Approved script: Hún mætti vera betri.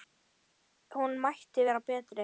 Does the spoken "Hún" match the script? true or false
true